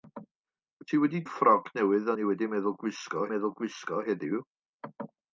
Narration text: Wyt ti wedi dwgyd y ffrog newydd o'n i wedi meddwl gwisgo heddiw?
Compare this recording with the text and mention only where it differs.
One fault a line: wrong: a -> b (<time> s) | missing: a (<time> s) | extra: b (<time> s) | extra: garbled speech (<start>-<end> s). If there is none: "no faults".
missing: dwgyd (1.2 s)
extra: meddwl gwisgo (3.3 s)